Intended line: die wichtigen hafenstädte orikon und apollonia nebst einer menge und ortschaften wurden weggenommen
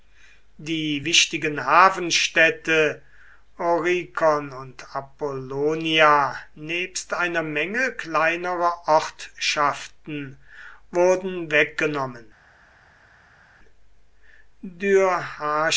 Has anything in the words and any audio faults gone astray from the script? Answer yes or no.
yes